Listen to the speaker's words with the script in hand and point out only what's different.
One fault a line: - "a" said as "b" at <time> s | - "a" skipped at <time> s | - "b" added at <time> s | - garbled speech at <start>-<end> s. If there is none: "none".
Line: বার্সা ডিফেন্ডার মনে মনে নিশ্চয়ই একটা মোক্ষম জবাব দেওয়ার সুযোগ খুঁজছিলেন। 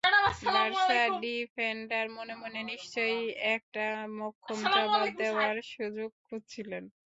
none